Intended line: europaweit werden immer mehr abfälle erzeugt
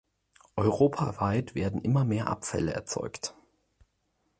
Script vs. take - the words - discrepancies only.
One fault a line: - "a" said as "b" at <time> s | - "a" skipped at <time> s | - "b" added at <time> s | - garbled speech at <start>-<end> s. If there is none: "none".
none